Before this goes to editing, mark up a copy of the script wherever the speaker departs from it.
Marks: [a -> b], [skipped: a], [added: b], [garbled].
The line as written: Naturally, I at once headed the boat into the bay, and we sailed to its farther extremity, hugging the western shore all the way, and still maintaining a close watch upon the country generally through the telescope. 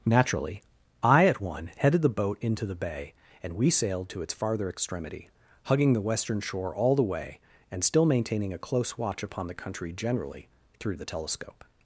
Naturally, I at [once -> one] headed the boat into the bay, and we sailed to its farther extremity, hugging the western shore all the way, and still maintaining a close watch upon the country generally through the telescope.